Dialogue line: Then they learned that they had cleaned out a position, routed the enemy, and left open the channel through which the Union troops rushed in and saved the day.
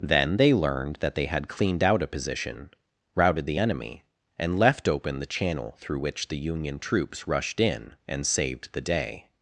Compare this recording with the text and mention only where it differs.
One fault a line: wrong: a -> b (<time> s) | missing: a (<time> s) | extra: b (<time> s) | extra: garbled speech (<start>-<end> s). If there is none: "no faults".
no faults